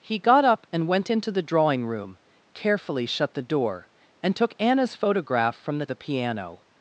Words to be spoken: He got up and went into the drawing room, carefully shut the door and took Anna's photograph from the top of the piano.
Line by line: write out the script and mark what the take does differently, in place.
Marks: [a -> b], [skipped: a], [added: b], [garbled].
He got up and went into the drawing room, carefully shut the door and took Anna's photograph from the [skipped: top of] the piano.